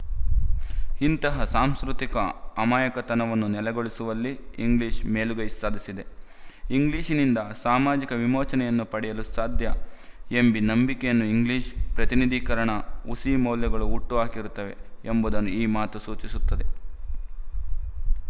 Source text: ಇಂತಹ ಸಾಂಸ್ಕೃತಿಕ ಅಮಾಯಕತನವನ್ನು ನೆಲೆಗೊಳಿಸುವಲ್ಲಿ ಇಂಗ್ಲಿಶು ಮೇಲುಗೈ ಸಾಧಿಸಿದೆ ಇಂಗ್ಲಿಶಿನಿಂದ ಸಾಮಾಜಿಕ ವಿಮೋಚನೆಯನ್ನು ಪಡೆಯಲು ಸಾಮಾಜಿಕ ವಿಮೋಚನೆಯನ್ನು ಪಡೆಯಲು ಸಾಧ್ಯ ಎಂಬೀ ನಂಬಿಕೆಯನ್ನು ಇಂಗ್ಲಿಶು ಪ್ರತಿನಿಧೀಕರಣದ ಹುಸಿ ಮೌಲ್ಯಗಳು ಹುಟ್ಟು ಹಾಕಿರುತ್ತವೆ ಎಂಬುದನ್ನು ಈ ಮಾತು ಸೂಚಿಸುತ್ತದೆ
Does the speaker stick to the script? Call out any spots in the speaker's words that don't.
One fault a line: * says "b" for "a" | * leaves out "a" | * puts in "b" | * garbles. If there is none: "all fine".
* leaves out "ಸಾಮಾಜಿಕ ವಿಮೋಚನೆಯನ್ನು ಪಡೆಯಲು"